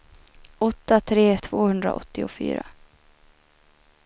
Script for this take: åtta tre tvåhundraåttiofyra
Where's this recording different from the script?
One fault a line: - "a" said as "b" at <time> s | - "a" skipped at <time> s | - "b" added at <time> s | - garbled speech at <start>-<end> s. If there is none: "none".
none